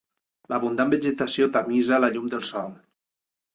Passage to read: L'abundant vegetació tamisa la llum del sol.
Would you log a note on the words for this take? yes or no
no